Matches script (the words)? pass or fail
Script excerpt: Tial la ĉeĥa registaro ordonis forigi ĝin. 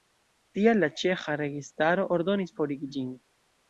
pass